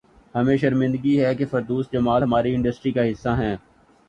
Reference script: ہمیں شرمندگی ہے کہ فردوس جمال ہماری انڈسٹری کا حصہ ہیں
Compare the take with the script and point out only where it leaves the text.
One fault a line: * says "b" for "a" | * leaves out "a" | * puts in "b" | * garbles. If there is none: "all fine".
all fine